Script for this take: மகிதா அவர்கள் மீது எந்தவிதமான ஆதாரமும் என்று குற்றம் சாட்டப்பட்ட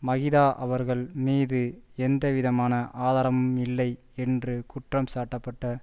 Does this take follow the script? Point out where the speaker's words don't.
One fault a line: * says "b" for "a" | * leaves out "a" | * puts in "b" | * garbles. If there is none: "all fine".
* puts in "இல்லை"